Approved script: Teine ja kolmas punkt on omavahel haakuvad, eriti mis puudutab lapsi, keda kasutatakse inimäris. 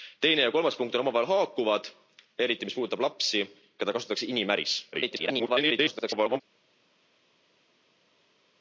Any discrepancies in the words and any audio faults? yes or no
yes